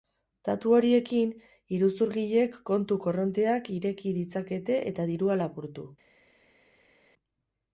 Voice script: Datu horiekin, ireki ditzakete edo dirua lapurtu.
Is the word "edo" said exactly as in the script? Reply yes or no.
no